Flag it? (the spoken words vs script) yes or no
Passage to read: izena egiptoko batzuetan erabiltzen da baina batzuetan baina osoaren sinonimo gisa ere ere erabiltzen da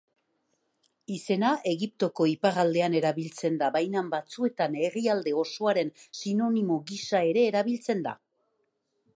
yes